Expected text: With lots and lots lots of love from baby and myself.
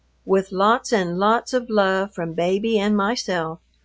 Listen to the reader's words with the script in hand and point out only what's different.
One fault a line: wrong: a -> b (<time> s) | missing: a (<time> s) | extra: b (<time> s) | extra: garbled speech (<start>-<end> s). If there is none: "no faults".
missing: lots (1.5 s)